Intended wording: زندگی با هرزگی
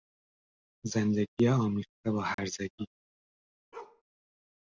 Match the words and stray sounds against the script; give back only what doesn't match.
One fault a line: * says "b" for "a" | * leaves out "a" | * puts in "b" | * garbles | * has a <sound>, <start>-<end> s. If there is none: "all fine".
* puts in "آمیخته"
* has a dropout, 2.3-2.4 s
* has a bark, 3.7-4.0 s